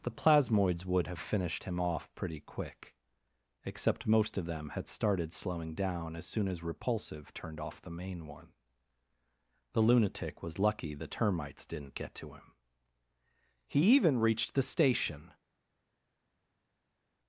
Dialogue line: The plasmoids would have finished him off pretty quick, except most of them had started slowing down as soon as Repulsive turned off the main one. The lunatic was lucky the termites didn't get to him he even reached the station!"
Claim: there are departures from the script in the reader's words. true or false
false